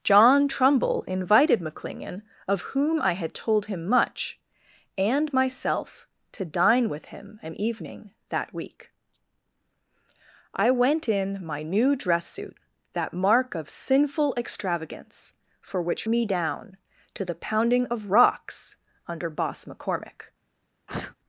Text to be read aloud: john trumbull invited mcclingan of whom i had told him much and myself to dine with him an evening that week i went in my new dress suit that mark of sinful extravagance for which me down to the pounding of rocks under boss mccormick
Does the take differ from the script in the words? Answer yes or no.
no